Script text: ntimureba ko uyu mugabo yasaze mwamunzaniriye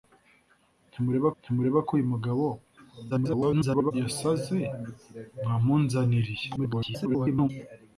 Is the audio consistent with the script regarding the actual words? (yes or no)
no